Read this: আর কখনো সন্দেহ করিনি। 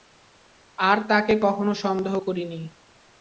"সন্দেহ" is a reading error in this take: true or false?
false